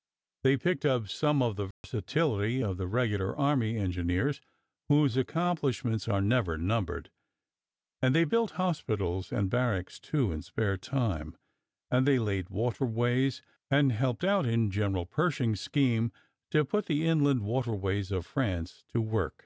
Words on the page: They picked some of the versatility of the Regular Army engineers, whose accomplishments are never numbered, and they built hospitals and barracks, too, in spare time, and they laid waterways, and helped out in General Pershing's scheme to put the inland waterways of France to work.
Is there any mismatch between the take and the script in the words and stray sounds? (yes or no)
yes